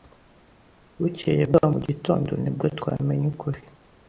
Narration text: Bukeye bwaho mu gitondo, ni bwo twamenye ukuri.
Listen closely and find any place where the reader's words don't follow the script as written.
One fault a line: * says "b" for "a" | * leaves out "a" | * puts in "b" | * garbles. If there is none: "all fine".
all fine